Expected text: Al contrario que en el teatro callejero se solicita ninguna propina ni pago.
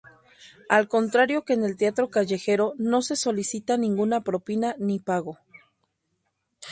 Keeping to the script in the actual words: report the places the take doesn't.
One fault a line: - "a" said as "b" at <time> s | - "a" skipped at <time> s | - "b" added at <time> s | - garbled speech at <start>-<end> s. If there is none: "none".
- "no" added at 2.8 s